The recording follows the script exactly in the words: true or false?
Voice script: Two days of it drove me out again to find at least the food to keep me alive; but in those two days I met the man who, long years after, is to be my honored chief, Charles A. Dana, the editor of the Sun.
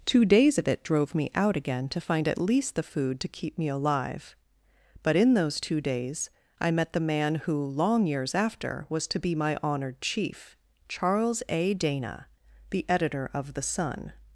false